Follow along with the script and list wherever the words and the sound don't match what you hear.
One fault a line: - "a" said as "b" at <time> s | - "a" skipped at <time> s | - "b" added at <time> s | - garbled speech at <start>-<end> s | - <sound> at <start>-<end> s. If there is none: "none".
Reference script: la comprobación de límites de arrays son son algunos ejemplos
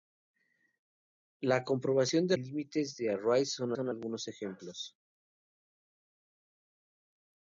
none